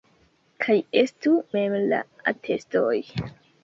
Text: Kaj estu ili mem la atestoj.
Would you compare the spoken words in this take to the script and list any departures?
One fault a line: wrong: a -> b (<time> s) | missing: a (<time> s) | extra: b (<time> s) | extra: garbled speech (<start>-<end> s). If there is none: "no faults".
missing: ili (1.3 s)